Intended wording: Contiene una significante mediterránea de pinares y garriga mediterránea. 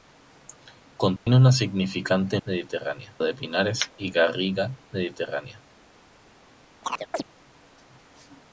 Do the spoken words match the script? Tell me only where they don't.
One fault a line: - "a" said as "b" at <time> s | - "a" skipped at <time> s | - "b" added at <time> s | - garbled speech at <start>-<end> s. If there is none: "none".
none